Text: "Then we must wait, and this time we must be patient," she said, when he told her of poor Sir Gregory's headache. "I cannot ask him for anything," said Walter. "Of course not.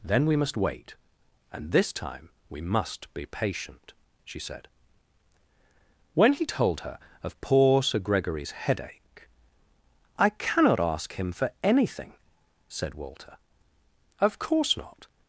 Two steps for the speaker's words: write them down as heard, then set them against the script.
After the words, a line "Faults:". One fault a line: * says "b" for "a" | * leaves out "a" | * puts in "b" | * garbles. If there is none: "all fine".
"Then we must wait, and this time we must be patient," she said, when he told her of poor Sir Gregory's headache. "I cannot ask him for anything," said Walter. "Of course not.
Faults:
all fine